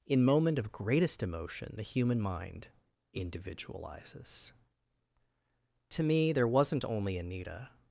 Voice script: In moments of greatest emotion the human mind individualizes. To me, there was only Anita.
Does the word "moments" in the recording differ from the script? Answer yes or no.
yes